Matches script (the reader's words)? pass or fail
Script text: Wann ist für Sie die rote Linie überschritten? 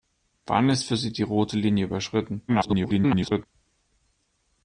fail